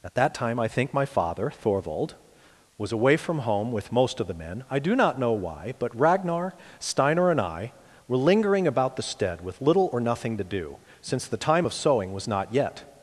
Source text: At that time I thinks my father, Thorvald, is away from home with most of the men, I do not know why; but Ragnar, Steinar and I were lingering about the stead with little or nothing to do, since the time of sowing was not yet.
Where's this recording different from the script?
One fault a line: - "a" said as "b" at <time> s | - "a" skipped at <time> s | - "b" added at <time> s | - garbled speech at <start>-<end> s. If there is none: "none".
- "thinks" said as "think" at 0.7 s
- "is" said as "was" at 2.8 s